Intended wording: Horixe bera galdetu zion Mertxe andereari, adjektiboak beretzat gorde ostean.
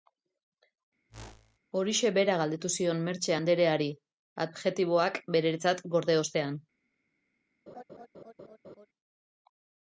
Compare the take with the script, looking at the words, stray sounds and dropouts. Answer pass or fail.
fail